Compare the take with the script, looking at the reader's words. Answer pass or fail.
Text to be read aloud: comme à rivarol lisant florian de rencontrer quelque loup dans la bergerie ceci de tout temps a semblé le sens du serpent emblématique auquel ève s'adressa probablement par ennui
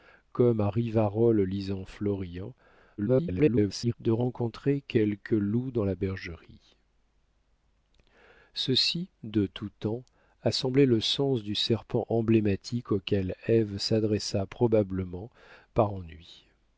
fail